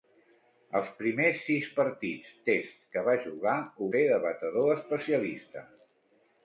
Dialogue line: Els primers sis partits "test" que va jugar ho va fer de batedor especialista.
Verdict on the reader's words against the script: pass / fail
fail